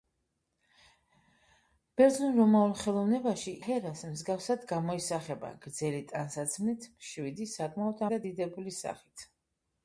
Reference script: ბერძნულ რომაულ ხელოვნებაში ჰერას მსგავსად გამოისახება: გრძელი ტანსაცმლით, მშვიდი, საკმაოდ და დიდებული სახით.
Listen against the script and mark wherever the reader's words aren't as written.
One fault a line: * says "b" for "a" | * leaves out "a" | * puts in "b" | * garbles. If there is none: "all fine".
all fine